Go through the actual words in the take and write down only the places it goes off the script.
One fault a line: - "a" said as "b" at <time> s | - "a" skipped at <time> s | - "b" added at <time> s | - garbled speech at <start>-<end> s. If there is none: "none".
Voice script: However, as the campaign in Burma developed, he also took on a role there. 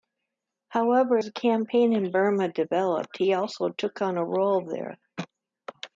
- "as" skipped at 1.2 s